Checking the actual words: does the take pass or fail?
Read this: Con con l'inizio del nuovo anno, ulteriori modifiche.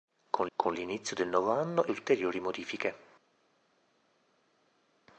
pass